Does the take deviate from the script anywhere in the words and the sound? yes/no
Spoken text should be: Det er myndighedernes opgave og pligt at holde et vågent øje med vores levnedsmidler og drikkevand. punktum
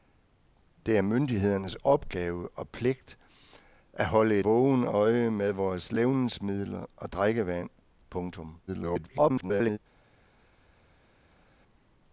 yes